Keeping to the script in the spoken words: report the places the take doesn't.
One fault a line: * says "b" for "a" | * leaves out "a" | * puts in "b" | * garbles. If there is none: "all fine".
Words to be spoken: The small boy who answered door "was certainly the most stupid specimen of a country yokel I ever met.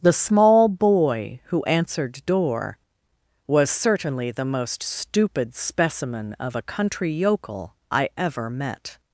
all fine